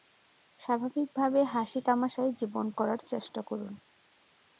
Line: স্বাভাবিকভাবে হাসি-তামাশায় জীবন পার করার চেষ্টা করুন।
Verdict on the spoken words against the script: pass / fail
fail